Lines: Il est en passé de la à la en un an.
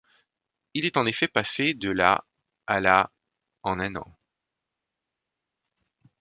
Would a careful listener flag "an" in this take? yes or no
no